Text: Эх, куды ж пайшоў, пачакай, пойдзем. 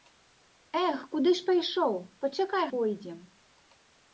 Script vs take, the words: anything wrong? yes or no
no